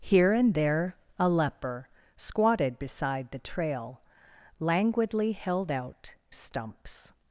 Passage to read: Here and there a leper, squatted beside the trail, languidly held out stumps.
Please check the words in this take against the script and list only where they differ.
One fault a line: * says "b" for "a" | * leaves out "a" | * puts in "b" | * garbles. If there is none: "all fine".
all fine